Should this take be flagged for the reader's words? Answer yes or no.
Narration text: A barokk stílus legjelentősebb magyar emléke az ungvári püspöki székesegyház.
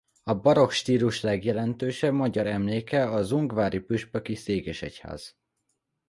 no